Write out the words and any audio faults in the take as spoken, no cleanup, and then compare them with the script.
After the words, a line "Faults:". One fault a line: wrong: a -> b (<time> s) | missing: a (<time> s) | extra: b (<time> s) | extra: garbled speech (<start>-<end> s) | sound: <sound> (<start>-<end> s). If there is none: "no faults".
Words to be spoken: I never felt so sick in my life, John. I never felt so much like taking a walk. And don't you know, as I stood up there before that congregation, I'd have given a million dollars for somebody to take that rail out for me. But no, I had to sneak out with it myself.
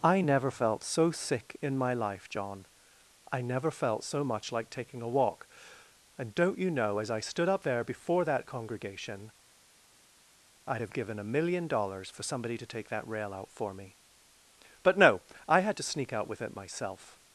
I never felt so sick in my life, John. I never felt so much like taking a walk. And don't you know, as I stood up there before that congregation, I'd have given a million dollars for somebody to take that rail out for me. But no, I had to sneak out with it myself.
Faults:
no faults